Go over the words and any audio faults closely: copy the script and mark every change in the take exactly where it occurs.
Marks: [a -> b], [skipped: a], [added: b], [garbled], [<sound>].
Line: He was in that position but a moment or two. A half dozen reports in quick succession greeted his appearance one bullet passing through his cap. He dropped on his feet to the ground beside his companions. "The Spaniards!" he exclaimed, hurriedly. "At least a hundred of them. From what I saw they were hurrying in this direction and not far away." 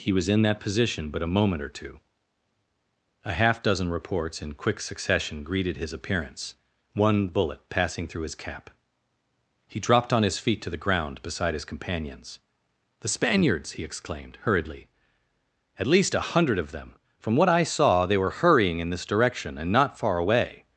He was in that position but a moment or two. A half dozen reports in quick succession greeted his appearance one bullet passing through his cap. He dropped on his feet to the ground beside his companions. "The Spaniards!" he exclaimed, hurriedly. "At least a hundred of them. From what I saw they were hurrying in this direction and not far away."